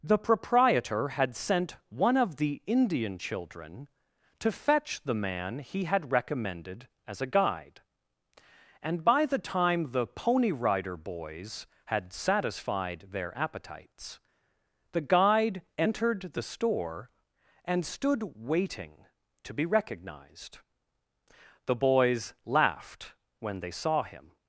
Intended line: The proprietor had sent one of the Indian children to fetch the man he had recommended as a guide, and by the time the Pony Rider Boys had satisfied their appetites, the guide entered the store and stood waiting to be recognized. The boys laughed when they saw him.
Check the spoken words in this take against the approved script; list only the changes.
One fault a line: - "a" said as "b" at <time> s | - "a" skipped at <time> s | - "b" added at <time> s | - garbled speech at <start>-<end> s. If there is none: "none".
none